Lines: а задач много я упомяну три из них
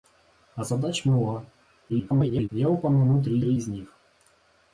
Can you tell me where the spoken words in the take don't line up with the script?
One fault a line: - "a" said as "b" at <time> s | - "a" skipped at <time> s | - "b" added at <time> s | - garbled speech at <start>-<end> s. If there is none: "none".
- garbled speech at 1.9-2.5 s
- "три" added at 3.4 s